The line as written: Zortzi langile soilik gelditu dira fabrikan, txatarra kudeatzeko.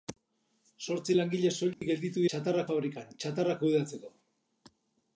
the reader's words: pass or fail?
fail